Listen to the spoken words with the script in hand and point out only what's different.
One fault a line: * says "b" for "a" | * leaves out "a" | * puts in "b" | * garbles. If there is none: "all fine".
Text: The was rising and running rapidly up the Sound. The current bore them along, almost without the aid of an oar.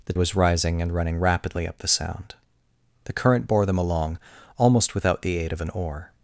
all fine